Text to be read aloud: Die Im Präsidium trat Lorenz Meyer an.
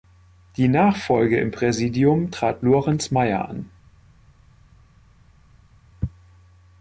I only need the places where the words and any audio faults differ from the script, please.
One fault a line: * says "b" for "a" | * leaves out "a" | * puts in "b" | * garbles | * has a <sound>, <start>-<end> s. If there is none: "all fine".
* puts in "Nachfolge"